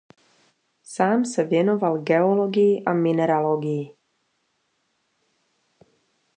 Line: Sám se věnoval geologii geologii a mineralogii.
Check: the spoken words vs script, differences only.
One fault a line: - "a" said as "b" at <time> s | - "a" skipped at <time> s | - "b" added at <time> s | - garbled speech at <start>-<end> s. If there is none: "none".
- "geologii" skipped at 2.9 s